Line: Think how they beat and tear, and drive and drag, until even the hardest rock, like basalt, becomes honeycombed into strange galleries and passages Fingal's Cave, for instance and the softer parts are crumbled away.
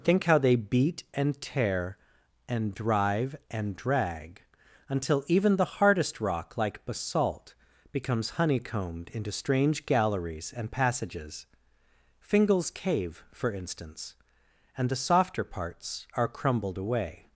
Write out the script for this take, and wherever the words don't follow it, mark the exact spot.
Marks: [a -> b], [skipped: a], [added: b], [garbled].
Think how they beat and tear, and drive and drag, until even the hardest rock, like basalt, becomes honeycombed into strange galleries and passages Fingal's Cave, for instance and the softer parts are crumbled away.